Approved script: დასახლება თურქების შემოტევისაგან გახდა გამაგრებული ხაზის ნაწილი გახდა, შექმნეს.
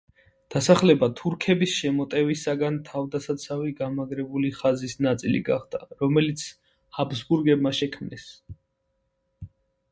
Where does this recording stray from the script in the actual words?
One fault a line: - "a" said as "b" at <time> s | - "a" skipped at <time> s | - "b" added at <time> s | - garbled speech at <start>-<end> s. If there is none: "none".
- "გახდა" said as "თავდასაცავი" at 2.9 s
- "რომელიც ჰაბსბურგებმა" added at 6.0 s